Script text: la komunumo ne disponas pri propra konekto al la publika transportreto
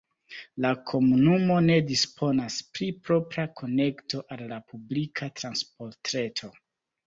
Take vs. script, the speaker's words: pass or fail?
pass